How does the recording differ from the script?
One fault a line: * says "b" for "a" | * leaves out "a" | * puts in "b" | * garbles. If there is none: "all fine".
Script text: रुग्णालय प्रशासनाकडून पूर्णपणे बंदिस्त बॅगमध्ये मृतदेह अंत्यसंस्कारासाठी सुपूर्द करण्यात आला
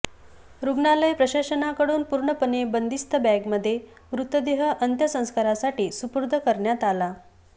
all fine